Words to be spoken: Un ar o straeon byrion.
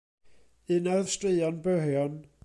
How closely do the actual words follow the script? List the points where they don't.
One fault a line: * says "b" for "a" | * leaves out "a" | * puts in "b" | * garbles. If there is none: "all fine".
all fine